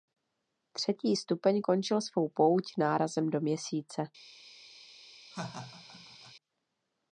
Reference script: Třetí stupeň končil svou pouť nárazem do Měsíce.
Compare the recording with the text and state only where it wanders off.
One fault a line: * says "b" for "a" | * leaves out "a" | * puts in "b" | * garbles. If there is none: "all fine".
all fine